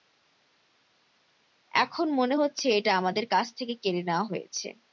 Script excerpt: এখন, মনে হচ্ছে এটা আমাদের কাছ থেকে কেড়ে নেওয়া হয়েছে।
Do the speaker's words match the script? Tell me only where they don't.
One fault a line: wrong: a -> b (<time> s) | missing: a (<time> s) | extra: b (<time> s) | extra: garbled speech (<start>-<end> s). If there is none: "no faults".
no faults